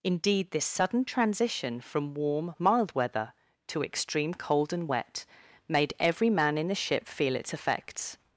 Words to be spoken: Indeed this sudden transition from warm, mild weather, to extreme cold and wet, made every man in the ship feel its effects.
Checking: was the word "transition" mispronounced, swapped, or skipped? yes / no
no